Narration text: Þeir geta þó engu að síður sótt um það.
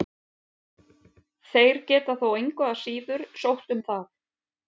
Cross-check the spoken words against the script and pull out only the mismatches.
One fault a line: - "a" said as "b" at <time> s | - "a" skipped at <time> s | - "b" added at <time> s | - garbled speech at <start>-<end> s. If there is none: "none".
none